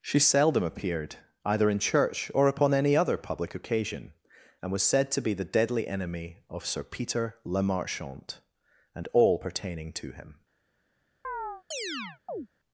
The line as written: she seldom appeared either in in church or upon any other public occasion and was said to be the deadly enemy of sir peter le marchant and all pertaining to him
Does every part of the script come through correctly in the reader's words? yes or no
no